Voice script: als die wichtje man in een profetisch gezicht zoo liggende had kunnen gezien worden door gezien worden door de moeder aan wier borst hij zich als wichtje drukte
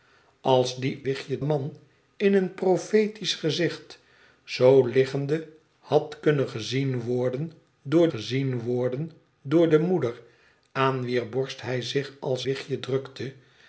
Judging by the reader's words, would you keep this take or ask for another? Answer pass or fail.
pass